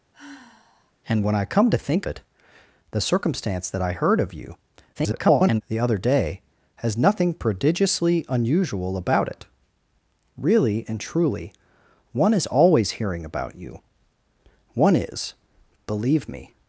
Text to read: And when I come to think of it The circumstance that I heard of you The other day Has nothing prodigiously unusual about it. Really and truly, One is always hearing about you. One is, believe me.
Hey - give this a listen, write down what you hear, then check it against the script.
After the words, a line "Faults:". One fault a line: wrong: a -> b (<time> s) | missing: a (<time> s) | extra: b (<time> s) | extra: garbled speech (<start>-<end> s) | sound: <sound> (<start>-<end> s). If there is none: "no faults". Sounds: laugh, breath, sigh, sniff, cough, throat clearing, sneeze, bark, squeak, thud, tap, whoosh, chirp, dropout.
And when I come to think it The circumstance that I heard of you [garbled] The other day Has nothing prodigiously unusual about it. Really and truly, One is always hearing about you. One is, believe me.
Faults:
sound: sigh (0.1-0.9 s)
missing: of (2.1 s)
extra: garbled speech (4.9-5.6 s)